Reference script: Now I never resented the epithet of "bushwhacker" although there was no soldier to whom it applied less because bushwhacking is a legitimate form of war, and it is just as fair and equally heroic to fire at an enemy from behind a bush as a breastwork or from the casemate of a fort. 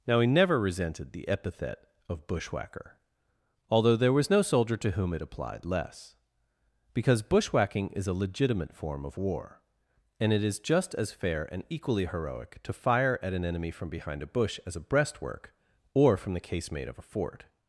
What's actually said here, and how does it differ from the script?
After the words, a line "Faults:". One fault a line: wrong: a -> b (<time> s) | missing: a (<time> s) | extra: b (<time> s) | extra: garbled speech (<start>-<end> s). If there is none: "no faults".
Now he never resented the epithet of "bushwhacker" although there was no soldier to whom it applied less because bushwhacking is a legitimate form of war, and it is just as fair and equally heroic to fire at an enemy from behind a bush as a breastwork or from the casemate of a fort.
Faults:
wrong: I -> he (0.2 s)